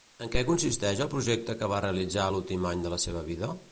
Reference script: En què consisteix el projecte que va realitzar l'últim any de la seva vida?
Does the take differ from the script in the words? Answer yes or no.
no